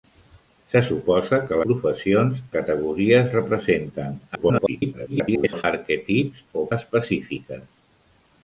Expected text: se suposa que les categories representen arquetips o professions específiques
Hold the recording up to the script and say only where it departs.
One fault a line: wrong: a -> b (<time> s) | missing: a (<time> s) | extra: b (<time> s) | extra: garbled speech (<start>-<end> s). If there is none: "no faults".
wrong: les -> professions (1.7 s)
extra: garbled speech (4.3-5.6 s)
missing: professions (6.7 s)